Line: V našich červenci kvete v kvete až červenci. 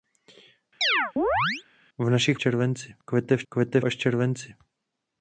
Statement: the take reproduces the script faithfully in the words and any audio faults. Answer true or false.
false